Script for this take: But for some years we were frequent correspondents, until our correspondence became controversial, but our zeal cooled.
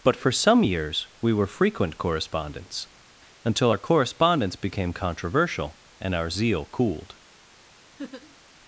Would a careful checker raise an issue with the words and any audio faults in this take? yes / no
yes